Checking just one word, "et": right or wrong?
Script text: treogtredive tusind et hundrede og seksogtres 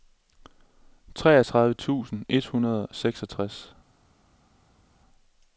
right